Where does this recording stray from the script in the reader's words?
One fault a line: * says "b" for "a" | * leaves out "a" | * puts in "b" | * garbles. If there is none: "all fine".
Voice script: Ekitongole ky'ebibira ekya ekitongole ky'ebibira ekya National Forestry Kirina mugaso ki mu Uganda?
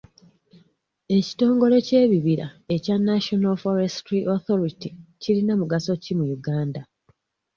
* leaves out "ekitongole ky'ebibira ekya"
* puts in "Authority"